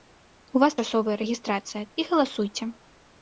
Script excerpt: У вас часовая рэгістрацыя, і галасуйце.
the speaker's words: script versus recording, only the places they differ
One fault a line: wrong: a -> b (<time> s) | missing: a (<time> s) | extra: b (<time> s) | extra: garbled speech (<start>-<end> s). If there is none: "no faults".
no faults